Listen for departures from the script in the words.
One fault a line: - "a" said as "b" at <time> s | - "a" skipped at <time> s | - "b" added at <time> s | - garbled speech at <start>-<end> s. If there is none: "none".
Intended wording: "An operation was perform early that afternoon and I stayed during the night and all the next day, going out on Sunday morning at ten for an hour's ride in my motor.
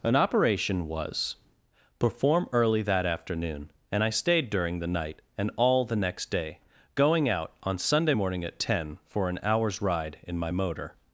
none